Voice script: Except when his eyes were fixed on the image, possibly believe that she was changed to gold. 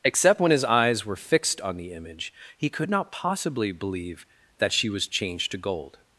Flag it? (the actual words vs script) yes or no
yes